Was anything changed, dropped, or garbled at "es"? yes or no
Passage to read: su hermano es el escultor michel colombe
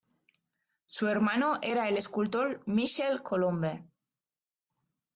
yes